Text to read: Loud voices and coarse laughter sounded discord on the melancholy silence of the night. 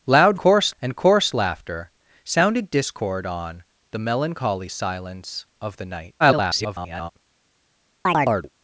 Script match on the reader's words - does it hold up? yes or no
no